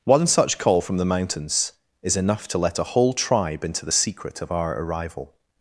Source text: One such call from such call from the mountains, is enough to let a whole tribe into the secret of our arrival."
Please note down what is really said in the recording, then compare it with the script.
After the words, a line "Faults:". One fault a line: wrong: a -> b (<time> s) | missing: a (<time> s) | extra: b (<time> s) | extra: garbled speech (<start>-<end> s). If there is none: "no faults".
One such call from the mountains, is enough to let a whole tribe into the secret of our arrival."
Faults:
missing: such call from (1.0 s)